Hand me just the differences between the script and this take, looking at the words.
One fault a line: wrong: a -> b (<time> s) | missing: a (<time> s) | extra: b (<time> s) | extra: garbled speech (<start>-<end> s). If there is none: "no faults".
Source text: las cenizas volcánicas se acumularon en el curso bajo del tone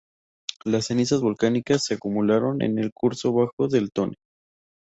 no faults